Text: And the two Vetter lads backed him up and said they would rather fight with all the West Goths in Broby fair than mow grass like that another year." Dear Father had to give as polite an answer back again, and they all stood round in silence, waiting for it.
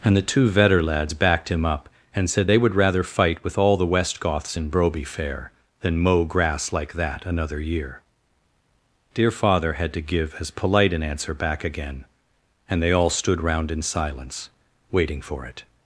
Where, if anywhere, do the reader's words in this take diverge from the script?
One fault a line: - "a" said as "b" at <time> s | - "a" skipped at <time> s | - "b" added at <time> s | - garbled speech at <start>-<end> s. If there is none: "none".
none